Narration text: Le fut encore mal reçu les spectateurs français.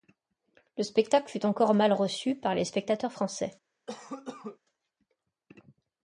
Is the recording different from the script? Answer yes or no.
yes